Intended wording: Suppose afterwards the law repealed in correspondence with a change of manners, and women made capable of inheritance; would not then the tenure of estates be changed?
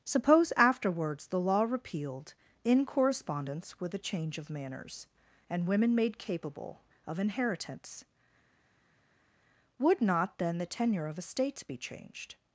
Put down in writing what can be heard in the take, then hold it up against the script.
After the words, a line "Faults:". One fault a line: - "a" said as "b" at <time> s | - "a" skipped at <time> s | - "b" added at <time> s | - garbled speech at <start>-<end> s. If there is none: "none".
Suppose afterwards the law repealed in correspondence with a change of manners, and women made capable of inheritance; would not then the tenure of estates be changed?
Faults:
none